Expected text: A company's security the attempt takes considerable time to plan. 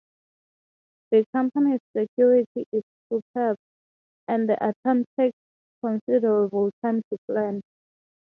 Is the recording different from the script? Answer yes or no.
yes